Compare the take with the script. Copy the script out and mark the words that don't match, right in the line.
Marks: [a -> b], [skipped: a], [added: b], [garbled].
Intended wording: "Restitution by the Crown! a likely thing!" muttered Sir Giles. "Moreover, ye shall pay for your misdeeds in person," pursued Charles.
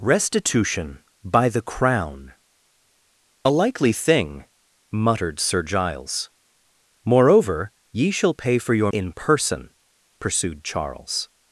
"Restitution by the Crown! a likely thing!" muttered Sir Giles. "Moreover, ye shall pay for your [skipped: misdeeds] in person," pursued Charles.